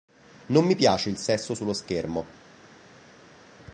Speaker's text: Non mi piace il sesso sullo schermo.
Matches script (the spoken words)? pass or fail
pass